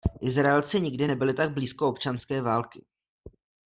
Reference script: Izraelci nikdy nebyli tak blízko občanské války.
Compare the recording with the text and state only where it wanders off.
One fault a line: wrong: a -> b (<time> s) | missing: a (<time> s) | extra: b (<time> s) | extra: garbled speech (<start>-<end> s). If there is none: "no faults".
no faults